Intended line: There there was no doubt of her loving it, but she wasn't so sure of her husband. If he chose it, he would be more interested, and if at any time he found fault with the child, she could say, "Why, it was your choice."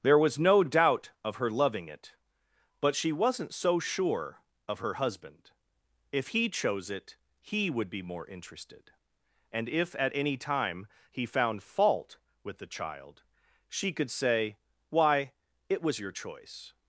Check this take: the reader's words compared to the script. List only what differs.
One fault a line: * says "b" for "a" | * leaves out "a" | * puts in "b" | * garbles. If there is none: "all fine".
* leaves out "there"